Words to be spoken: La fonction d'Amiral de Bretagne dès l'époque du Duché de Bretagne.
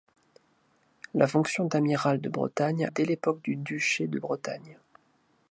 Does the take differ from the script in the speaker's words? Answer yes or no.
no